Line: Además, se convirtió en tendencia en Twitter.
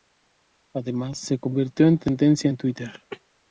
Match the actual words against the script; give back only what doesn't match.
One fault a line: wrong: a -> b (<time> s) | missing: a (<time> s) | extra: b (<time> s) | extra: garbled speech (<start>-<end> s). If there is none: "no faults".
no faults